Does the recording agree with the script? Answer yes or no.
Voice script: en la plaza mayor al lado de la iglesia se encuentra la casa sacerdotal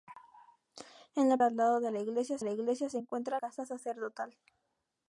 no